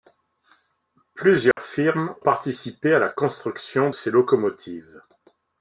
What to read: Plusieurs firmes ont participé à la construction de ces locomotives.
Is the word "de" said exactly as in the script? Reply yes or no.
no